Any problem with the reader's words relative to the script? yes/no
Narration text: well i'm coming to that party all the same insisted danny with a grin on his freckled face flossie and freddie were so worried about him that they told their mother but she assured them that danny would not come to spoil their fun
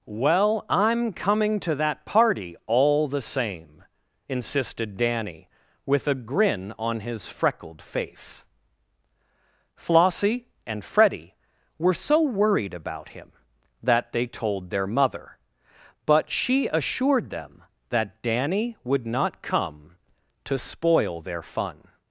no